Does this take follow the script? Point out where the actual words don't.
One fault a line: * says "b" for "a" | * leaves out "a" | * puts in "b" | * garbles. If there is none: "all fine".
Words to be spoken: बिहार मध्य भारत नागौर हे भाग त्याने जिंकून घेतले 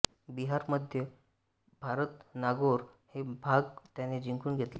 all fine